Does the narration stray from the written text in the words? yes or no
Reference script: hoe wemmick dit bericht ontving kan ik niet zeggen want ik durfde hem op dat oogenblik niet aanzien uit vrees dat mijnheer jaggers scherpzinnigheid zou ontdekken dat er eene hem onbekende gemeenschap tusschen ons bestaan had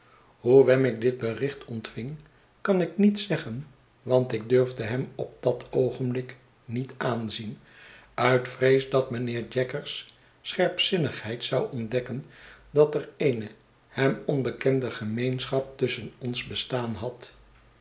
no